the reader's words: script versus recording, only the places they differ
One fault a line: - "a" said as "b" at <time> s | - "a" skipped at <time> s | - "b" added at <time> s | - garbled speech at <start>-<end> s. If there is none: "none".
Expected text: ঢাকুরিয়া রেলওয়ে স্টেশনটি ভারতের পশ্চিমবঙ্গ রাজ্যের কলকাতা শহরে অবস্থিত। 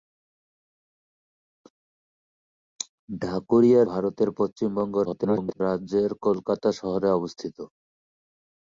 - "রেলওয়ে স্টেশনটি" skipped at 3.8 s
- garbled speech at 5.0-5.6 s